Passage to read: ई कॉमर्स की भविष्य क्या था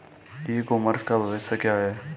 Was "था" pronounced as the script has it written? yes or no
no